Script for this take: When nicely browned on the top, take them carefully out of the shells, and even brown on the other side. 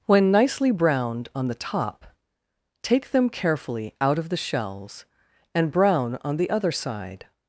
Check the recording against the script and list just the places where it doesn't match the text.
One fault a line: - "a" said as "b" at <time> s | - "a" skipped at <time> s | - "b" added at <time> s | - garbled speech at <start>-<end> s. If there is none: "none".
- "even" skipped at 5.7 s